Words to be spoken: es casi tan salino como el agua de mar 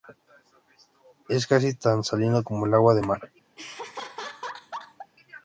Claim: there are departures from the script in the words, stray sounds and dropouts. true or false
true